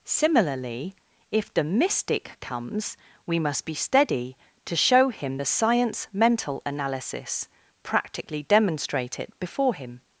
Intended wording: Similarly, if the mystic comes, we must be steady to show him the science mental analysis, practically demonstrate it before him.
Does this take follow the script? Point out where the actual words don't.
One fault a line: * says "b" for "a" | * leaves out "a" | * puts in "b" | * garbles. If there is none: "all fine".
all fine